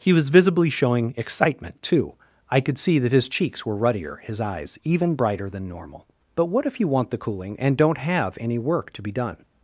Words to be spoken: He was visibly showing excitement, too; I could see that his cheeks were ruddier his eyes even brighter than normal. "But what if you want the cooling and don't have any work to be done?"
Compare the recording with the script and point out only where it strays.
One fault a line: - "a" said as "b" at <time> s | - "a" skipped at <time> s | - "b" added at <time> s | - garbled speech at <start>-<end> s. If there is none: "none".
none